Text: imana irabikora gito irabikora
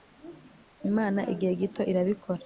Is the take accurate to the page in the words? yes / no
no